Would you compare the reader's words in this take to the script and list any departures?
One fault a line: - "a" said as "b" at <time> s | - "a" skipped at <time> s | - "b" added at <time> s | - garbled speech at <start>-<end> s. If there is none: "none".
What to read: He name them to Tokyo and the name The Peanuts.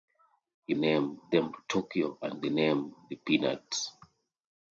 none